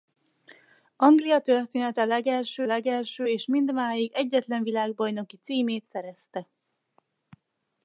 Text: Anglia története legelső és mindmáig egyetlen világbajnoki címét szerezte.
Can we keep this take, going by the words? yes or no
no